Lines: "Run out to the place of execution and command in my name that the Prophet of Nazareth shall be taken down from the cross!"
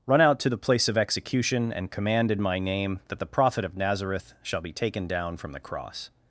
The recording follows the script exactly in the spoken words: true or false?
true